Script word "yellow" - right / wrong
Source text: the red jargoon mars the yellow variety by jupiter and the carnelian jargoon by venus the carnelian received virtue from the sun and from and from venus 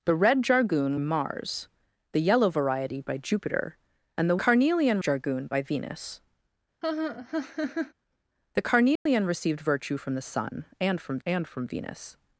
right